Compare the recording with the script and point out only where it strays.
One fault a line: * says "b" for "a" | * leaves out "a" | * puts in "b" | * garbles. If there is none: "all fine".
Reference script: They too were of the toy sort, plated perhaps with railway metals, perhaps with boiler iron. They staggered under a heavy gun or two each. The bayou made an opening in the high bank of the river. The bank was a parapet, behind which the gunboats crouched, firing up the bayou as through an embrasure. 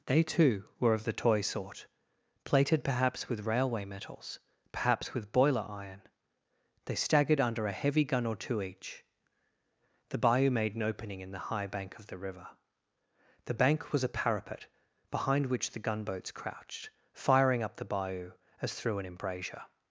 all fine